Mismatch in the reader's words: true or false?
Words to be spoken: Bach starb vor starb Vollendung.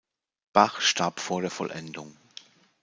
true